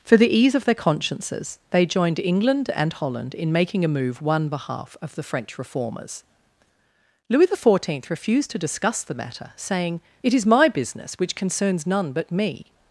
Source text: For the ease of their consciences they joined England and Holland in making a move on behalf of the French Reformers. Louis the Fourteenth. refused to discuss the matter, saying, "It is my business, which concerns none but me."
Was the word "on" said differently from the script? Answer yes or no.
yes